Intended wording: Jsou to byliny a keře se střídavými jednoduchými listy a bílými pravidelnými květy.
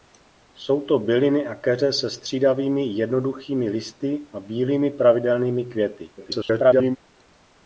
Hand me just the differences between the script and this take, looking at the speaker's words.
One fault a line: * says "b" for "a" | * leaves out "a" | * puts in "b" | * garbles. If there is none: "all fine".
* garbles